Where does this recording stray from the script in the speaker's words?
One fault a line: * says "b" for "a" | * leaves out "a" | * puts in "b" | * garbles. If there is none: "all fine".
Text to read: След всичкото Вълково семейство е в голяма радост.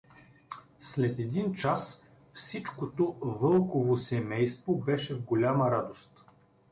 * puts in "един час"
* says "беше" for "е"